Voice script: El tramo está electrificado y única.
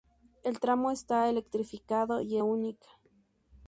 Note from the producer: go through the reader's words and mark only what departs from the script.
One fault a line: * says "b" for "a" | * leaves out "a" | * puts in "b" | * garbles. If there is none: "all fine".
all fine